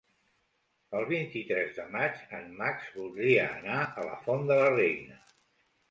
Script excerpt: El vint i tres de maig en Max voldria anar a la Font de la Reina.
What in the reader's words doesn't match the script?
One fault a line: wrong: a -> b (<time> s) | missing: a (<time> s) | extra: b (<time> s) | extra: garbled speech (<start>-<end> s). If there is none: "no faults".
no faults